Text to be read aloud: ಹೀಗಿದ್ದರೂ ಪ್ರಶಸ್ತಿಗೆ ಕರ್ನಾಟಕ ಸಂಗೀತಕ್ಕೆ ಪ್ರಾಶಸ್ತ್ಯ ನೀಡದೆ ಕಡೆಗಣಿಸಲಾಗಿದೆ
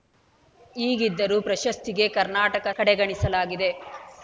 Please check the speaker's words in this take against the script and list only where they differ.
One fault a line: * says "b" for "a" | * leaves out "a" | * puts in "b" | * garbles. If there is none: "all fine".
* leaves out "ಸಂಗೀತಕ್ಕೆ ಪ್ರಾಶಸ್ತ್ಯ ನೀಡದೆ"